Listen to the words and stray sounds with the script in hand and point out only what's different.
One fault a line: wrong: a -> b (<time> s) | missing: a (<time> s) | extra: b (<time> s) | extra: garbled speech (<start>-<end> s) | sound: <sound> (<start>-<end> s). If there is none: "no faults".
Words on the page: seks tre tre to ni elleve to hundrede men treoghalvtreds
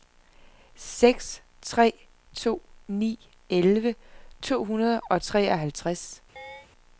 missing: tre (1.9 s)
wrong: men -> og (5.1 s)
sound: chirp (6.4-6.7 s)